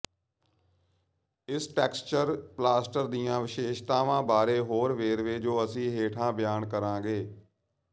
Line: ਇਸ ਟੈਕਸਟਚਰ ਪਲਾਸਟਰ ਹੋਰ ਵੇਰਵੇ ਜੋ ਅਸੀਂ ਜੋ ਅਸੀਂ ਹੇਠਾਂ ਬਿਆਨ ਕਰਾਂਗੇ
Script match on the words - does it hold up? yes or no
no